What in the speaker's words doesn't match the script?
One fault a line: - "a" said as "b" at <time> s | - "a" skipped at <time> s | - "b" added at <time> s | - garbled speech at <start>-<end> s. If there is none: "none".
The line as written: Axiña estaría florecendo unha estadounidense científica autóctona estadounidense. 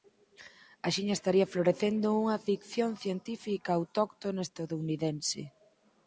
- "estadounidense" said as "ficción" at 2.5 s